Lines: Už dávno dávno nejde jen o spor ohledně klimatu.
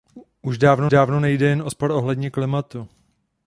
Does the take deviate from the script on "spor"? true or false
false